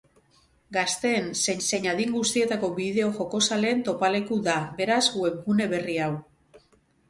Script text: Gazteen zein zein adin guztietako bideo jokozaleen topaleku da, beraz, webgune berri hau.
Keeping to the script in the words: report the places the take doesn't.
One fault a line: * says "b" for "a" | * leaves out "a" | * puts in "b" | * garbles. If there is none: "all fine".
all fine